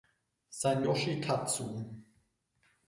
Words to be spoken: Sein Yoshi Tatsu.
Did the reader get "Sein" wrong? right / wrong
right